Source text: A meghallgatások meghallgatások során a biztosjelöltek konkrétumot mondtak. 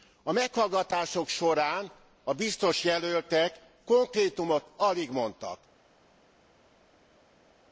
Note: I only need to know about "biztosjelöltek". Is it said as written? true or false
true